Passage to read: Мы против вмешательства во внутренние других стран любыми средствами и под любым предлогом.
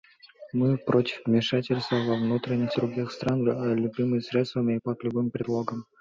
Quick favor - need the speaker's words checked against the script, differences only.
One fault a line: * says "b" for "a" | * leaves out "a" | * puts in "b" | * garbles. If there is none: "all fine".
all fine